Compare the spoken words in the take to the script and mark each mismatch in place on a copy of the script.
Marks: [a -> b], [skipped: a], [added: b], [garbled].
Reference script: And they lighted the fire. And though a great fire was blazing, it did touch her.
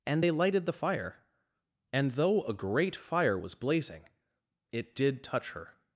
And they lighted the fire. And though a great fire was blazing, it did touch her.